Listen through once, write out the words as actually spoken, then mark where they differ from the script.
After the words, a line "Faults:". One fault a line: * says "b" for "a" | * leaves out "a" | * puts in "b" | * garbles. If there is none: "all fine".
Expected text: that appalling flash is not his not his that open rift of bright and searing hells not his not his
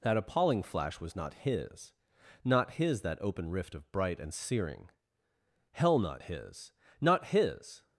that appalling flash was not his not his that open rift of bright and searing hell not his not his
Faults:
* says "was" for "is"
* says "hell" for "hells"